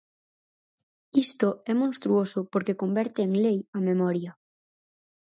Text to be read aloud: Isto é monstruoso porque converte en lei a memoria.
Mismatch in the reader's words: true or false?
false